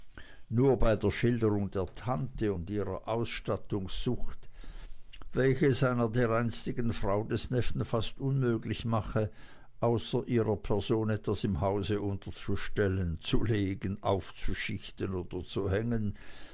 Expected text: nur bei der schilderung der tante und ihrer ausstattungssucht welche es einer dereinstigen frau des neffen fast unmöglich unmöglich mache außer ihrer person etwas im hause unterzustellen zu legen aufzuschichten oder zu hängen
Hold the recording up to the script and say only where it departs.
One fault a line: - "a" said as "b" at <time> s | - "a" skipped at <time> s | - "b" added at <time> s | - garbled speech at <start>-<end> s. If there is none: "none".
- "unmöglich" skipped at 8.9 s